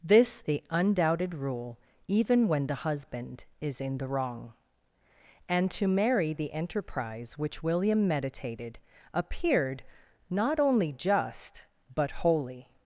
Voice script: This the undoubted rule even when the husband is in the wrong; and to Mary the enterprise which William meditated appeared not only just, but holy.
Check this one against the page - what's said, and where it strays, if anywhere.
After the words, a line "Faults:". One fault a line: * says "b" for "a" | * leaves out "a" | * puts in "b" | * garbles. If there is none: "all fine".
This the undoubted rule even when the husband is in the wrong; and to Mary the enterprise which William meditated appeared not only just, but holy.
Faults:
all fine